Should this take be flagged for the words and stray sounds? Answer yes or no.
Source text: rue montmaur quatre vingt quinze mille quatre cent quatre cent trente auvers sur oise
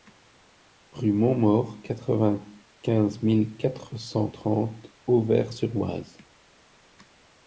yes